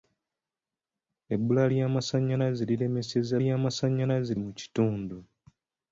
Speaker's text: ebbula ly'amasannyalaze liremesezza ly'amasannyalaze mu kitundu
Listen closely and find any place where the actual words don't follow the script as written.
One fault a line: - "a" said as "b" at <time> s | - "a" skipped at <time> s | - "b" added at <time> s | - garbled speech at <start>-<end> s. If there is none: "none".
none